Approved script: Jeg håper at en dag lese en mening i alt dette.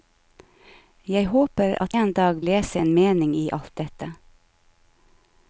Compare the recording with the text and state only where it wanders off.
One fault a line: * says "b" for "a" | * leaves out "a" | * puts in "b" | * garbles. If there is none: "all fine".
all fine